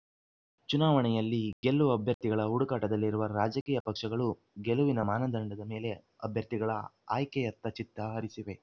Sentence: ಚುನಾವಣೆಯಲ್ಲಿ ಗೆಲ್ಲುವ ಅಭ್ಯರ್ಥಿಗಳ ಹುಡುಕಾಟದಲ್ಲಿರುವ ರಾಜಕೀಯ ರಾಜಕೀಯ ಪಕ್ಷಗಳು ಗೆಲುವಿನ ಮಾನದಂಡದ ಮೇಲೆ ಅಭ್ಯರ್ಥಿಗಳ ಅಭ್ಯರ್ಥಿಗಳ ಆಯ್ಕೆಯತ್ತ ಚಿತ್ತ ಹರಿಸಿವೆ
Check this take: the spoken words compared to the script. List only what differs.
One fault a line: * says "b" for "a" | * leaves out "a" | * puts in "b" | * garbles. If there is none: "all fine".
* leaves out "ರಾಜಕೀಯ"
* leaves out "ಅಭ್ಯರ್ಥಿಗಳ"